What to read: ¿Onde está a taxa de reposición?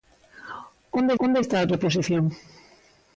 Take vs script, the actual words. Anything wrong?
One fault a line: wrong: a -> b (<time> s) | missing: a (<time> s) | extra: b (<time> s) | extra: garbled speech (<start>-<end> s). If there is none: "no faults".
extra: onde (1.3 s)
missing: taxa de (1.7 s)